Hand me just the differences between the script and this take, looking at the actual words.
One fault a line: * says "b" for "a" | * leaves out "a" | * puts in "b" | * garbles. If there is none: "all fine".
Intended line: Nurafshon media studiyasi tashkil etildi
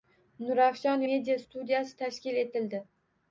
all fine